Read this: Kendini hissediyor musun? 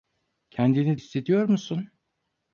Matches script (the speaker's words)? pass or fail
pass